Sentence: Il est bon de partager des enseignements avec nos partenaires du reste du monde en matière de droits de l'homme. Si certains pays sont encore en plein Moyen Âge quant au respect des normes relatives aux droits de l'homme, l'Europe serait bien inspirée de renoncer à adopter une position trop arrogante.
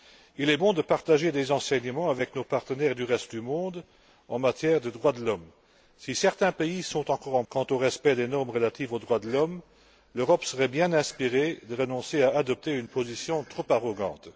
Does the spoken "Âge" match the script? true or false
false